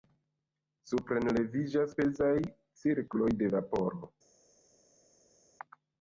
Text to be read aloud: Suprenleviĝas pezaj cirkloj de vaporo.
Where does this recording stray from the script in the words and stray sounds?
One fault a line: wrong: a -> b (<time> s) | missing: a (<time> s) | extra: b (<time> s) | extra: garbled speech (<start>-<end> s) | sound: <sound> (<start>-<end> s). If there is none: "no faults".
no faults